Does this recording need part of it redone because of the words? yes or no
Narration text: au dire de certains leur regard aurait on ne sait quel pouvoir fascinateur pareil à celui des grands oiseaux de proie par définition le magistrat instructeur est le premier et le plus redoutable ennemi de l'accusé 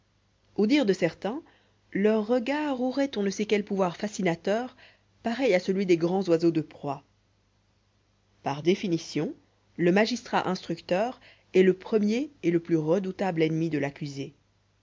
no